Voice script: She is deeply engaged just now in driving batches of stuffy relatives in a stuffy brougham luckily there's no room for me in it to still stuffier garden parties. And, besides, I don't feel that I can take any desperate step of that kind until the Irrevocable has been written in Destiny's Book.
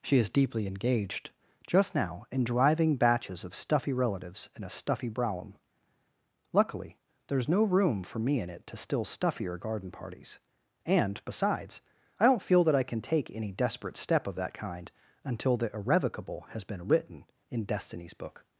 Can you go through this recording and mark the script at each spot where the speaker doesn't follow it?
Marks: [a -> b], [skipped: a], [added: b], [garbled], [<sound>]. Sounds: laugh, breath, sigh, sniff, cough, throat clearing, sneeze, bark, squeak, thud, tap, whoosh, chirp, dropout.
She is deeply engaged just now in driving batches of stuffy relatives in a stuffy brougham luckily there's no room for me in it to still stuffier garden parties. And, besides, I don't feel that I can take any desperate step of that kind until the Irrevocable has been written in Destiny's Book.